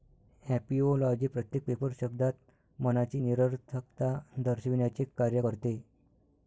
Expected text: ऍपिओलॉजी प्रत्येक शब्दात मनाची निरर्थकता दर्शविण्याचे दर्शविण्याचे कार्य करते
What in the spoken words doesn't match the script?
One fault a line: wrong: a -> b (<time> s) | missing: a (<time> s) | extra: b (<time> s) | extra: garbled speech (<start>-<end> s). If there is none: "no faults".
extra: पेपर (1.6 s)
missing: दर्शविण्याचे (5.0 s)